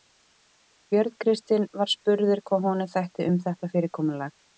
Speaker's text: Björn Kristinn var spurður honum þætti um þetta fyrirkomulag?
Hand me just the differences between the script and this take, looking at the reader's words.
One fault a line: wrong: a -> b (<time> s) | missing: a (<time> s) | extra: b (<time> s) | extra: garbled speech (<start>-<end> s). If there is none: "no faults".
extra: hvað (2.5 s)